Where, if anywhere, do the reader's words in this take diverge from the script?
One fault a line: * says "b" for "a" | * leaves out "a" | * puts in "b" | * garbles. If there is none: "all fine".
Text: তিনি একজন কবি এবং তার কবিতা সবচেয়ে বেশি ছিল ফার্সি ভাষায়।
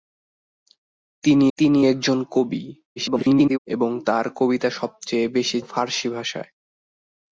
* puts in "তিনি"
* garbles
* leaves out "ছিল"